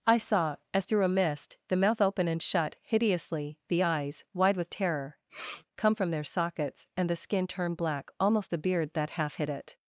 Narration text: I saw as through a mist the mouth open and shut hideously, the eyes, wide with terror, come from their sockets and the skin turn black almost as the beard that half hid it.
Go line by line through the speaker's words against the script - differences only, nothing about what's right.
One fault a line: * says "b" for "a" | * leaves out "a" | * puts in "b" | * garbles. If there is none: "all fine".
* leaves out "as"